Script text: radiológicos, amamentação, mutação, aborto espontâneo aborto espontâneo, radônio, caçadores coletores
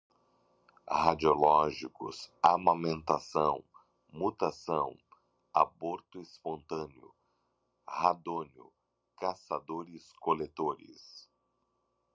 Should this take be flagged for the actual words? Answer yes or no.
yes